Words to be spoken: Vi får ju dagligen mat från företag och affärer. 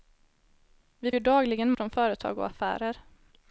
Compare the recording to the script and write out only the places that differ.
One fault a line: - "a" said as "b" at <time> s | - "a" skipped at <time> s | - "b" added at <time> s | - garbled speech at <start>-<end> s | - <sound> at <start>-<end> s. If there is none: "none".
- "får" skipped at 1.1 s
- "mat" skipped at 1.7 s